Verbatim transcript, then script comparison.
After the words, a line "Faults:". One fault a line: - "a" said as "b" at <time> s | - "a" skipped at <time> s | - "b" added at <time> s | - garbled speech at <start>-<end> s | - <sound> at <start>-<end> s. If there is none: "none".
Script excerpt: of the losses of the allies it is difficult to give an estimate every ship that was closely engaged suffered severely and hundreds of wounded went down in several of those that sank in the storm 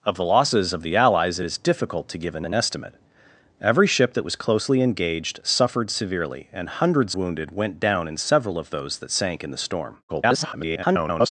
of the losses of the allies it is difficult to give an an estimate every ship that was closely engaged suffered severely and hundreds wounded went down in several of those that sank in the storm [garbled]
Faults:
- "an" added at 2.5 s
- "of" skipped at 7.2 s
- garbled speech at 10.1-11.3 s